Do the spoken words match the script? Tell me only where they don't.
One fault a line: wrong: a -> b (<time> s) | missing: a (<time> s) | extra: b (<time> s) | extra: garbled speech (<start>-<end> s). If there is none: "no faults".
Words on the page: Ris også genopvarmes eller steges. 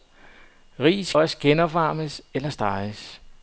no faults